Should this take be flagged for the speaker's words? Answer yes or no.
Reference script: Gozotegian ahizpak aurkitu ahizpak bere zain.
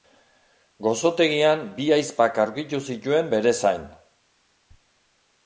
yes